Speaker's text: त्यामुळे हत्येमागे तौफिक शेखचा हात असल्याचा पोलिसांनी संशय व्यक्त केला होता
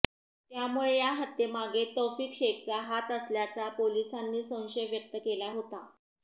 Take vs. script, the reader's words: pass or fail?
fail